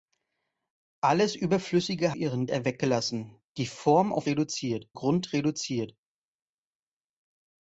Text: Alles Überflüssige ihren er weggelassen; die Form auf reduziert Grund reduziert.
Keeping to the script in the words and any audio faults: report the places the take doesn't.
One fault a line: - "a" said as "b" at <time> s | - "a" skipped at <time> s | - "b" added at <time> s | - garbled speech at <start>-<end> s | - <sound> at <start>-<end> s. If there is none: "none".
none